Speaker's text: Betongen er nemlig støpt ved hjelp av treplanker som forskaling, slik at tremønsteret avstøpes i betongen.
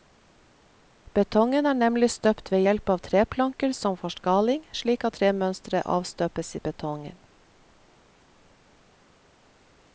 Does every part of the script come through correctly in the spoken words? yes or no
yes